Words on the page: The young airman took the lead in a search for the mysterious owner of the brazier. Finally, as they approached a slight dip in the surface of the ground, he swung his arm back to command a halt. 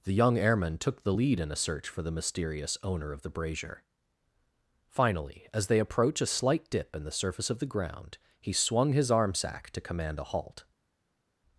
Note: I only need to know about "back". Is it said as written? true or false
false